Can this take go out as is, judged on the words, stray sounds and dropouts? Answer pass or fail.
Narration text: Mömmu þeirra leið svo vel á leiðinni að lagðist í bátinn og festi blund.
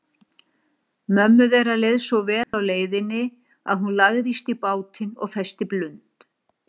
fail